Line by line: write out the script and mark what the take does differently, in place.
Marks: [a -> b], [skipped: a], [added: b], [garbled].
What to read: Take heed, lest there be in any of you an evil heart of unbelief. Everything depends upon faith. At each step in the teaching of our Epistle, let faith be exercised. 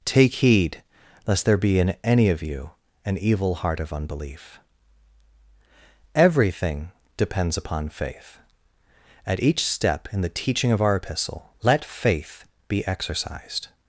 Take heed, lest there be in any of you an evil heart of unbelief. Everything depends upon faith. At each step in the teaching of our Epistle, let faith be exercised.